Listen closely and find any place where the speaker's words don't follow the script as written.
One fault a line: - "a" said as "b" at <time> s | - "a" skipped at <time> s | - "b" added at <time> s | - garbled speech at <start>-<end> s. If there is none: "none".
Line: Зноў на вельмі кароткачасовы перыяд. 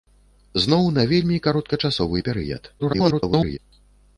- garbled speech at 2.8-3.6 s